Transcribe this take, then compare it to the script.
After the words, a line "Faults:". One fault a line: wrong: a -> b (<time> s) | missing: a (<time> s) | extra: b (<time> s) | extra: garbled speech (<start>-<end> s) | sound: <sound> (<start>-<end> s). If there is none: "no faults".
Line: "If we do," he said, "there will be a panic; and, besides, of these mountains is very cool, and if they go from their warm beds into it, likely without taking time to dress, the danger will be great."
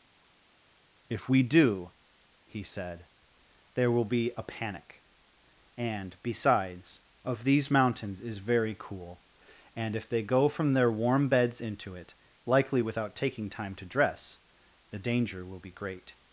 "If we do," he said, "there will be a panic; and, besides, of these mountains is very cool, and if they go from their warm beds into it, likely without taking time to dress, the danger will be great."
Faults:
no faults